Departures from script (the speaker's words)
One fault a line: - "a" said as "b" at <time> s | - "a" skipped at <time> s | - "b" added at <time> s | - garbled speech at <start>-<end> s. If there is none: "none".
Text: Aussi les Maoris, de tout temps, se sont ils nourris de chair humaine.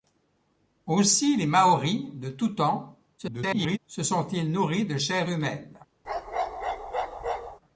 - garbled speech at 3.2-3.8 s